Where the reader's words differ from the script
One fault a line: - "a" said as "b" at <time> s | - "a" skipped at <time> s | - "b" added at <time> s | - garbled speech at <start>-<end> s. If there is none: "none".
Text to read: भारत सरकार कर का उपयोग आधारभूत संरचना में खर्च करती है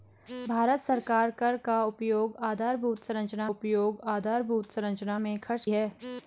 - "उपयोग आधारभूत संरचना" added at 3.5 s
- "करती" skipped at 5.6 s